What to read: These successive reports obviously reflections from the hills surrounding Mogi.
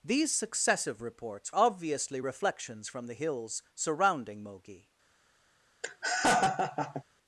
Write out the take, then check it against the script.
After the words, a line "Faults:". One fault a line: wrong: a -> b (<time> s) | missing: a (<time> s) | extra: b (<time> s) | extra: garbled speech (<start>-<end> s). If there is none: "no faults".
These successive reports obviously reflections from the hills surrounding Mogi.
Faults:
no faults